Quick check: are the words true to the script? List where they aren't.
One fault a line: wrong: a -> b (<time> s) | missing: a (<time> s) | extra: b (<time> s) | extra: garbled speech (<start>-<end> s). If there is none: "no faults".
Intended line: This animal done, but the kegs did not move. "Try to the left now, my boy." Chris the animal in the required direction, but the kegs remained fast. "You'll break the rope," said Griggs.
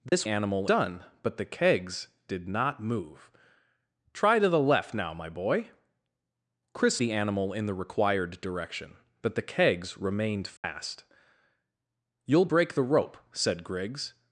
no faults